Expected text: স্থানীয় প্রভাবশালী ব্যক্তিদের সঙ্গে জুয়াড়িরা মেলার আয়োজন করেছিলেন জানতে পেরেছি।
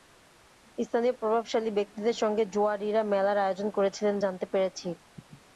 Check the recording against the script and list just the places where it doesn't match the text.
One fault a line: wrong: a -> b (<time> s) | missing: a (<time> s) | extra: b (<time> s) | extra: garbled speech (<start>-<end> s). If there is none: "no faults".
no faults